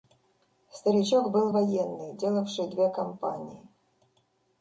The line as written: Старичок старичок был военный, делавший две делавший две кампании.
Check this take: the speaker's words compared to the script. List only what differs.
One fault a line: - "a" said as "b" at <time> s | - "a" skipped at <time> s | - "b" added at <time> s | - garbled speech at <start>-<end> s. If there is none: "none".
- "старичок" skipped at 1.3 s
- "делавший две" skipped at 2.9 s